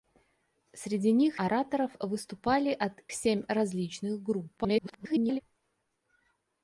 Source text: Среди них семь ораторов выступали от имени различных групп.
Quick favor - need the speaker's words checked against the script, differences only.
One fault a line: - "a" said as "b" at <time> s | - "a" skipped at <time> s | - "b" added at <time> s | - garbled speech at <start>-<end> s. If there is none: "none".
- "семь" skipped at 1.4 s
- "имени" said as "семь" at 3.1 s
- garbled speech at 4.6-5.4 s